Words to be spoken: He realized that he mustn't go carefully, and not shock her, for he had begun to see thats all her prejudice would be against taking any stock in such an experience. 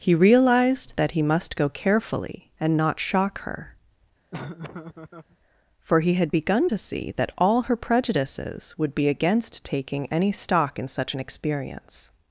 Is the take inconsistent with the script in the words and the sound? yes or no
yes